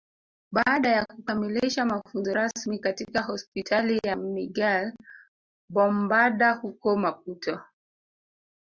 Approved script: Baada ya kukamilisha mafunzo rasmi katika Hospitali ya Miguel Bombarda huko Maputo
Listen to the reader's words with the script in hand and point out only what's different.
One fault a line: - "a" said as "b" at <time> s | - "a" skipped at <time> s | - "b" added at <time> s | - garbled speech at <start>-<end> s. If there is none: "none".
none